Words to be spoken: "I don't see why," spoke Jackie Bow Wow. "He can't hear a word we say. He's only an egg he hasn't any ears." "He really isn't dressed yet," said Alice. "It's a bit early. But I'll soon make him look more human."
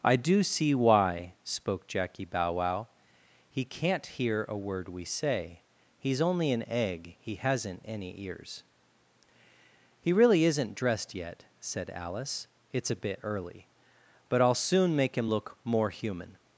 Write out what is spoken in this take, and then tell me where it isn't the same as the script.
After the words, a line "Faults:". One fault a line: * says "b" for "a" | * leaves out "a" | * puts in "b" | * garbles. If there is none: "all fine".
"I do see why," spoke Jackie Bow Wow. "He can't hear a word we say. He's only an egg he hasn't any ears." "He really isn't dressed yet," said Alice. "It's a bit early. But I'll soon make him look more human."
Faults:
* says "do" for "don't"